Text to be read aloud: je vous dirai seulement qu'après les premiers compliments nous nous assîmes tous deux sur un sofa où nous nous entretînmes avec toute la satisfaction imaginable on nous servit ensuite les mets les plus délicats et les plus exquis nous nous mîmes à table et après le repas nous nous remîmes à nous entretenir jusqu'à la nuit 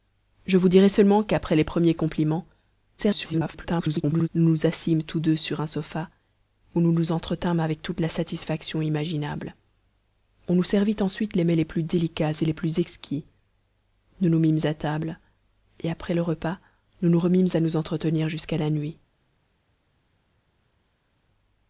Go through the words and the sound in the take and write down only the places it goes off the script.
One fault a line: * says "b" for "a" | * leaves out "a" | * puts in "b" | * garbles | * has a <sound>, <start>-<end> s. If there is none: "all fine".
* garbles